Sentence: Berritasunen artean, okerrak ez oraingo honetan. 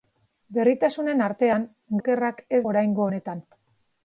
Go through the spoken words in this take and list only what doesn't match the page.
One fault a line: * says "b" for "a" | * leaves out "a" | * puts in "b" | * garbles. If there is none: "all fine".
all fine